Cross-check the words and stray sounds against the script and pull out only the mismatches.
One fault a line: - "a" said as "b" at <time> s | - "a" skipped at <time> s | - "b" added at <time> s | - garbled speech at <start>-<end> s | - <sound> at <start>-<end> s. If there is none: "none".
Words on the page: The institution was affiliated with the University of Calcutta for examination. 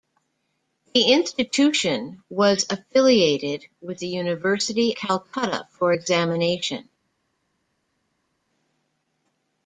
- "of" skipped at 5.0 s